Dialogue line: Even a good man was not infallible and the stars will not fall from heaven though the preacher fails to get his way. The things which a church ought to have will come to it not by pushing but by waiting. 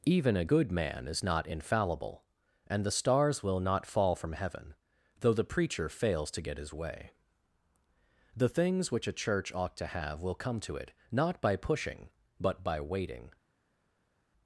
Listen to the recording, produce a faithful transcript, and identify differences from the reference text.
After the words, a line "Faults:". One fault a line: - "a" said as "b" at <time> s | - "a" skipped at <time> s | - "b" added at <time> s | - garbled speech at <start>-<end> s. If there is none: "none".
Even a good man is not infallible and the stars will not fall from heaven though the preacher fails to get his way. The things which a church ought to have will come to it not by pushing but by waiting.
Faults:
- "was" said as "is" at 1.1 s